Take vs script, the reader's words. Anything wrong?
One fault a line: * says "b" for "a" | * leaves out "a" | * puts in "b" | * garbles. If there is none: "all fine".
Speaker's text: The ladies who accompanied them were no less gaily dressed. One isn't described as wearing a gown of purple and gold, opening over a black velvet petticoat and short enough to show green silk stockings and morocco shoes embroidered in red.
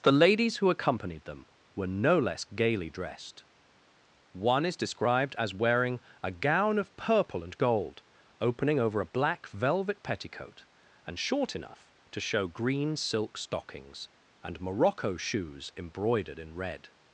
* says "is" for "isn't"